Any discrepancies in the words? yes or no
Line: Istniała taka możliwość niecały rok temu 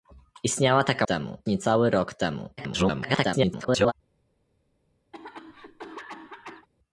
yes